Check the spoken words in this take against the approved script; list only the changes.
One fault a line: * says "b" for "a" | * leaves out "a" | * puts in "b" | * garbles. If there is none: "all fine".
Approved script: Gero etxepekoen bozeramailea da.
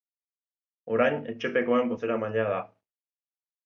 * says "Orain" for "Gero"